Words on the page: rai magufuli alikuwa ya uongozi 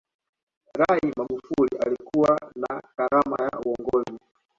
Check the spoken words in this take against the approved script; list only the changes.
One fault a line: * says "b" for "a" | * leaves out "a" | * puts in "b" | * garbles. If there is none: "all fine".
* puts in "na karama"